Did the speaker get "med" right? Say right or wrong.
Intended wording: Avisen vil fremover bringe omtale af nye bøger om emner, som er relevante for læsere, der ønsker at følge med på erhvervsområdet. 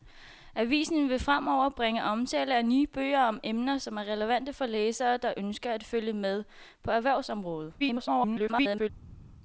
right